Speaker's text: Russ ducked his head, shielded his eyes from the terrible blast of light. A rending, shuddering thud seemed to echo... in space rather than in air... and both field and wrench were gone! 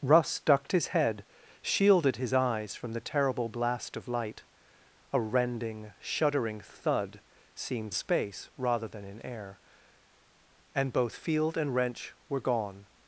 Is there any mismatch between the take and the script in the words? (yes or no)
yes